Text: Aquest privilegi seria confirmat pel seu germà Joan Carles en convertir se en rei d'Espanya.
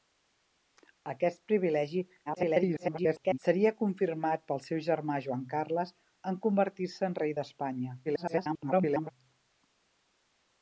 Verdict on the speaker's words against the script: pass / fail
fail